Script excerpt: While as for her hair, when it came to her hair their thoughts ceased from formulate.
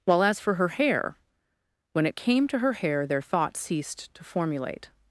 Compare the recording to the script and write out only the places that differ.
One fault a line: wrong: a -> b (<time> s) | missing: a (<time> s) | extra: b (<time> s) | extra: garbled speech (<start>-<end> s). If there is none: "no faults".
wrong: from -> to (4.1 s)